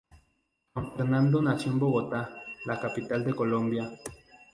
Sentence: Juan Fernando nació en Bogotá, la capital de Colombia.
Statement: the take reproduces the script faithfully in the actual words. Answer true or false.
true